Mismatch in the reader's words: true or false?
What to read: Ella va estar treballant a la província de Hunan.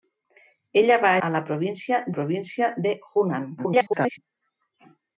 true